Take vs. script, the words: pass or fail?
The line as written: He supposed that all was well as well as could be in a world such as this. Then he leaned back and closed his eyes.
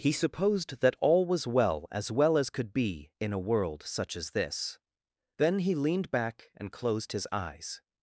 pass